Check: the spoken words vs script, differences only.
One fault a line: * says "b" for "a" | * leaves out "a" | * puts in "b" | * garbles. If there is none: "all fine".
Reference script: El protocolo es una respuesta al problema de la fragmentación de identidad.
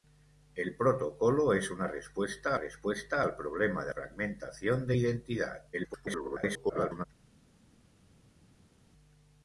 * puts in "respuesta"
* leaves out "la"
* garbles